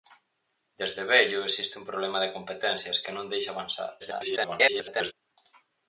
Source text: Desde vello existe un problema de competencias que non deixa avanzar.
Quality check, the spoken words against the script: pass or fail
fail